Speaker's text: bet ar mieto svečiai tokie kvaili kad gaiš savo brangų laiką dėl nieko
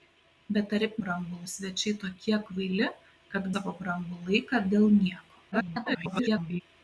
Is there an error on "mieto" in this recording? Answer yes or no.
yes